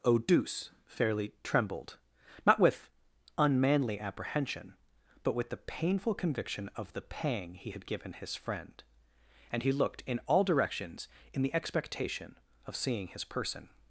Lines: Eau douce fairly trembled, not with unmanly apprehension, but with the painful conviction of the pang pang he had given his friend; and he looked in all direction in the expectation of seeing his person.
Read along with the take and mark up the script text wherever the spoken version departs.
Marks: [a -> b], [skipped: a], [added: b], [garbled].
Eau douce fairly trembled, not with unmanly apprehension, but with the painful conviction of the pang [skipped: pang] he had given his friend; and he looked in all [direction -> directions] in the expectation of seeing his person.